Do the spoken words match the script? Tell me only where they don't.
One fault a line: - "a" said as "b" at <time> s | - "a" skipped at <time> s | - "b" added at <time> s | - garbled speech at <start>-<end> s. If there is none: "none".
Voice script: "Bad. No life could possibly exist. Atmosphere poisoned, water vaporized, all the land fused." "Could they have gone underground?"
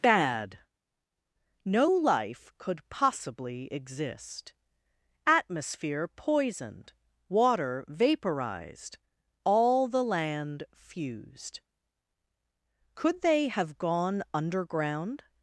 none